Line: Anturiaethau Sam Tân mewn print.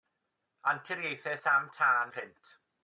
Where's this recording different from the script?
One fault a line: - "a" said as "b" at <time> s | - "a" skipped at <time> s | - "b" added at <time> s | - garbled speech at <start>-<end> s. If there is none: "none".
- "mewn" skipped at 2.1 s